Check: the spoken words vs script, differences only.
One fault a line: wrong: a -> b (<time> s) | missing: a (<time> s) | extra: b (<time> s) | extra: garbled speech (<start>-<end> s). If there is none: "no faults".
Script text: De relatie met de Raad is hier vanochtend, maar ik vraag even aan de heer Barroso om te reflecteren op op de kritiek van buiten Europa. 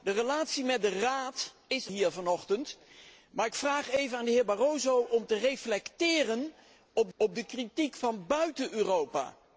no faults